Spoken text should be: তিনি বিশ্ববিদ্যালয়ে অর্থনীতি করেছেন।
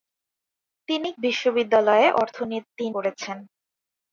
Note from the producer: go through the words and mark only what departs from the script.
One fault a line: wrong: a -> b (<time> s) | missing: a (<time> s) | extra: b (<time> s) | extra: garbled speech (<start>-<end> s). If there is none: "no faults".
no faults